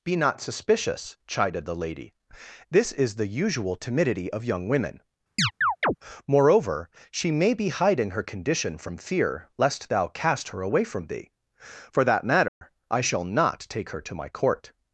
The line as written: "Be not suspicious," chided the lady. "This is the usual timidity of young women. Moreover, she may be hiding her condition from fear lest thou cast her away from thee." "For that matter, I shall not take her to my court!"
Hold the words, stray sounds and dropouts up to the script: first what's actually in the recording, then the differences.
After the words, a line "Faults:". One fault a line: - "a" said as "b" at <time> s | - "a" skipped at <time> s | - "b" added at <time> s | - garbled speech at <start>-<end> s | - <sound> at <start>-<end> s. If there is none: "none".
"Be not suspicious," chided the lady. "This is the usual timidity of young women. Moreover, she may be hiding her condition from fear lest thou cast her away from thee." "For that matter, I shall not take her to my court!"
Faults:
- chirp at 5.4-6.0 s
- dropout at 12.5-12.6 s